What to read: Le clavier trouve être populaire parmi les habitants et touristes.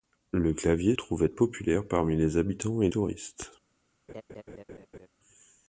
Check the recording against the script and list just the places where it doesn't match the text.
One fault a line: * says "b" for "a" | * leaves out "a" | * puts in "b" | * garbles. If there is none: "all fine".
all fine